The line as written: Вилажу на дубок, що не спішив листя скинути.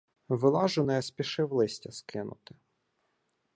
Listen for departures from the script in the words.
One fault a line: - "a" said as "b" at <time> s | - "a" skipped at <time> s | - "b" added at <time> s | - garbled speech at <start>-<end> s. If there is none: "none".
- "на дубок що" skipped at 0.8 s